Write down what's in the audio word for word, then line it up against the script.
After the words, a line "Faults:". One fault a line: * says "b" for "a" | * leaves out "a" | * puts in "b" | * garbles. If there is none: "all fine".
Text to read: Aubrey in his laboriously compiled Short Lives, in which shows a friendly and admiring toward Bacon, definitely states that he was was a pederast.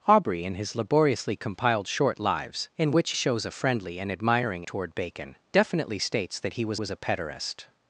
Aubrey in his laboriously compiled Short Lives, in which shows a friendly and admiring toward Bacon, definitely states that he was was a pederast.
Faults:
all fine